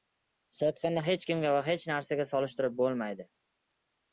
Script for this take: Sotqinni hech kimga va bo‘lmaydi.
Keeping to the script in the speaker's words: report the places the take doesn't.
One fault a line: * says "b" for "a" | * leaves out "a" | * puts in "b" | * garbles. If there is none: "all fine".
* puts in "hech narsaga solishtirib"